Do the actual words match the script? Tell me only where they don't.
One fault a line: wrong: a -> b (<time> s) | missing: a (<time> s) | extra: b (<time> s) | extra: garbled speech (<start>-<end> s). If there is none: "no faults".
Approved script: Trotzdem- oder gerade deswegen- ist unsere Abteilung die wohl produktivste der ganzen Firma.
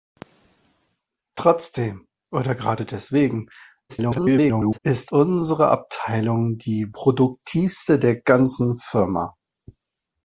extra: garbled speech (3.9-4.8 s)
missing: wohl (6.9 s)